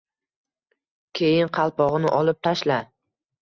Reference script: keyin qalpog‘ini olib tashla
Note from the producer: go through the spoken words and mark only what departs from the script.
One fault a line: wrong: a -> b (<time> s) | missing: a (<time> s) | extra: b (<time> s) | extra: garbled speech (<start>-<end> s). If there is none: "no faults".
no faults